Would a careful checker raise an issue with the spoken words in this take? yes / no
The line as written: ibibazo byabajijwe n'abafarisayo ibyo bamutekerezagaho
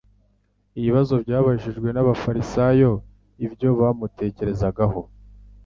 no